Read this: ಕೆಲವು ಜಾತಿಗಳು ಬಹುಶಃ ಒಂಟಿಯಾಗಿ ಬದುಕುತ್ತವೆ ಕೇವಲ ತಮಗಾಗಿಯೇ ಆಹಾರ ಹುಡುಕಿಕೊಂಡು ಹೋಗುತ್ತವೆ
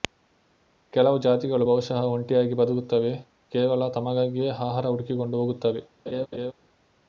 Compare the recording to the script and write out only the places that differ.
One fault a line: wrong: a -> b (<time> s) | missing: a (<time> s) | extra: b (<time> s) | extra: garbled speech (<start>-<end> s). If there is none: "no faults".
no faults